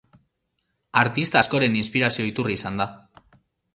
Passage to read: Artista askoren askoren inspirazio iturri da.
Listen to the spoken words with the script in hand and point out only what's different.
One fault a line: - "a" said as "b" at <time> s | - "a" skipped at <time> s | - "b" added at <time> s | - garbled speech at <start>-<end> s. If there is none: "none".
- "askoren" skipped at 1.7 s
- "izan" added at 2.6 s